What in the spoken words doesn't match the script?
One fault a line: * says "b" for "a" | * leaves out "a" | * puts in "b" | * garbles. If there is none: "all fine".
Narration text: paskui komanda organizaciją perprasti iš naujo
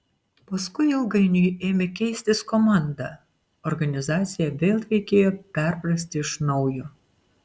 * puts in "ilgainiui ėmė keistis"
* puts in "vėl reikėjo"